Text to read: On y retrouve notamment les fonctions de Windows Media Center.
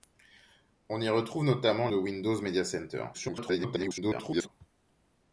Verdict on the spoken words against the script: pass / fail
fail